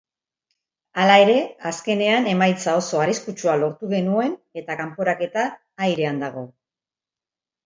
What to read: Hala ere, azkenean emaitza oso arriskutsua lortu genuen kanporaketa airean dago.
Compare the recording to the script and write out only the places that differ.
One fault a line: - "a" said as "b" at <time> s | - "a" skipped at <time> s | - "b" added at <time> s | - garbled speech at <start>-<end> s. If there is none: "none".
- "eta" added at 4.6 s